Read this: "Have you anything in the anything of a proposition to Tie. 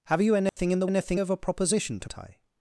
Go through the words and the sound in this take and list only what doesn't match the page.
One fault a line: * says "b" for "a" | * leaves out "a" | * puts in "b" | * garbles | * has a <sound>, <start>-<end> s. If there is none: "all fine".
* has a dropout, 0.5-0.6 s